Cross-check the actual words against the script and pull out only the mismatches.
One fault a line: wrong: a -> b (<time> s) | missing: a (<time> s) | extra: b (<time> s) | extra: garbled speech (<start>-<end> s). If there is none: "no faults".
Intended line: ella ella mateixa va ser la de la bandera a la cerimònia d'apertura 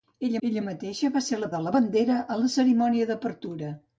no faults